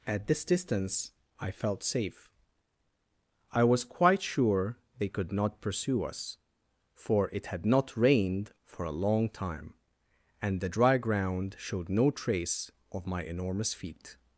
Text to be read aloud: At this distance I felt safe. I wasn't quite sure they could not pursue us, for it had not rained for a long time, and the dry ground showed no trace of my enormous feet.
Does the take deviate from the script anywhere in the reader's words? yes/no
yes